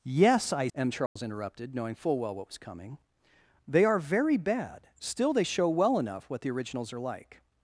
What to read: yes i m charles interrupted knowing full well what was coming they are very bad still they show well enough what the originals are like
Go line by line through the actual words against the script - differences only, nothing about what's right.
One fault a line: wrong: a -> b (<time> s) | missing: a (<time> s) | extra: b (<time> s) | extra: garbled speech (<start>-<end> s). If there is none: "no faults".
no faults